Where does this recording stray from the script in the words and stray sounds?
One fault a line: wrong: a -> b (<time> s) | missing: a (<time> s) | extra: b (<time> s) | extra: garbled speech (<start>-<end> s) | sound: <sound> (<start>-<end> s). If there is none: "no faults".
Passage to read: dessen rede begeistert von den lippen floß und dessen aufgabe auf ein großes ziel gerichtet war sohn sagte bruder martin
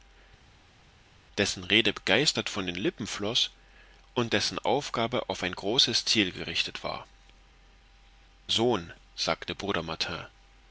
no faults